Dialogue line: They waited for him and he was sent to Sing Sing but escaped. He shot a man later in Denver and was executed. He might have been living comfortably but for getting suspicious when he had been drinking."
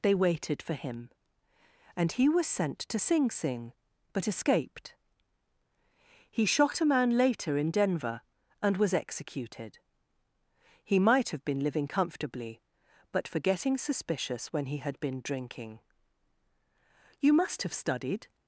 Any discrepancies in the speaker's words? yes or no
yes